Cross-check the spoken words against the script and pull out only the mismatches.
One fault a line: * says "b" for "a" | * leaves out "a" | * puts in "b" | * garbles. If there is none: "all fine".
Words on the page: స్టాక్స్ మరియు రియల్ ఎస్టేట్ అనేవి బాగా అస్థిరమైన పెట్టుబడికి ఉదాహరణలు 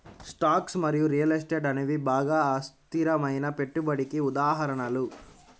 all fine